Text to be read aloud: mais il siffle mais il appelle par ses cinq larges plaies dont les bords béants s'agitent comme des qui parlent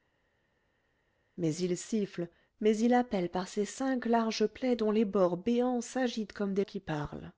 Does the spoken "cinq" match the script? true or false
true